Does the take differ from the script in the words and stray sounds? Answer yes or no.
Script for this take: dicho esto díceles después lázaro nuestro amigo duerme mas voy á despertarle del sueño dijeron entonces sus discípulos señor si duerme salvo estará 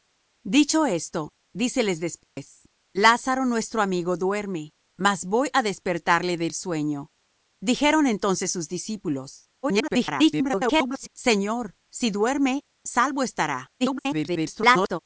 yes